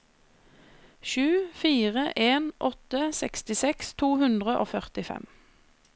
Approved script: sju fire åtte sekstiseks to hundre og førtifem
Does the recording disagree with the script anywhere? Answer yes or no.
yes